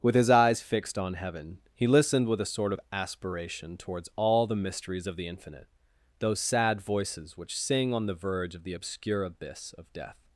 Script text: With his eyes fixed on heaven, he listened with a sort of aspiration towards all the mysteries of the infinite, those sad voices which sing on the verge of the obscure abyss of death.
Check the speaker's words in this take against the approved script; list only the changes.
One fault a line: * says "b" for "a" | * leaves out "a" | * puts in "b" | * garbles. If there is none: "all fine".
all fine